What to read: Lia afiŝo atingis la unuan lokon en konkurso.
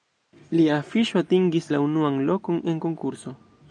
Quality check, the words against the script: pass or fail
pass